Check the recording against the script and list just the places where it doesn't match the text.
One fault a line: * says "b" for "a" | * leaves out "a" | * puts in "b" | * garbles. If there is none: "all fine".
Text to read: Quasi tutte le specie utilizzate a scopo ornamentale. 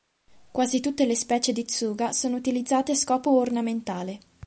* puts in "di Tsuga sono"